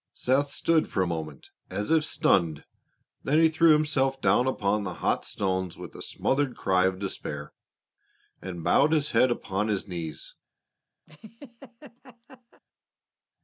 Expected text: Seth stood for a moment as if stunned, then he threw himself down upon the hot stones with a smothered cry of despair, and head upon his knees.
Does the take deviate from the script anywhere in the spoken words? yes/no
yes